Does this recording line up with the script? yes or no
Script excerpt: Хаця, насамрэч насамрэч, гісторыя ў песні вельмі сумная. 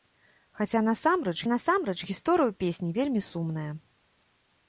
yes